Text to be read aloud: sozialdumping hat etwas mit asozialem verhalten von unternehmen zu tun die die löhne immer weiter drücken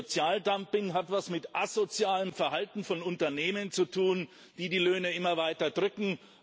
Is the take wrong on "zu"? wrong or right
right